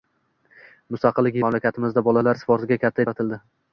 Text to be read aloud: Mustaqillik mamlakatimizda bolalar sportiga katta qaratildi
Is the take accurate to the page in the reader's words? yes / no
yes